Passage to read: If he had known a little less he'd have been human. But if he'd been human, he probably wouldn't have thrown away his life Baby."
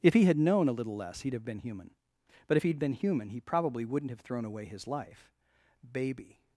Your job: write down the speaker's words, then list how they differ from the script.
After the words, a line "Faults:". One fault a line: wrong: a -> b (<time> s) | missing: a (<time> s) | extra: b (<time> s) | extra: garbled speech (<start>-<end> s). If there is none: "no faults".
If he had known a little less he'd have been human. But if he'd been human, he probably wouldn't have thrown away his life Baby."
Faults:
no faults